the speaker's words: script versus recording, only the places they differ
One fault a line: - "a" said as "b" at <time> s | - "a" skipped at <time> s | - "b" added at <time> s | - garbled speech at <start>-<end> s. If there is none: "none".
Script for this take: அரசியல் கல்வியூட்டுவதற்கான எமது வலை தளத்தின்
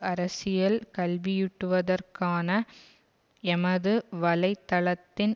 none